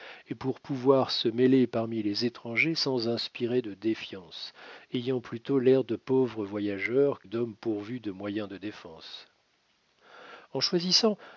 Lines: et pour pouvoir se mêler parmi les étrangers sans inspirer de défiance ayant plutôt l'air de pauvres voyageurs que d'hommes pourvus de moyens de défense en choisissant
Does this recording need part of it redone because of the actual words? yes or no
yes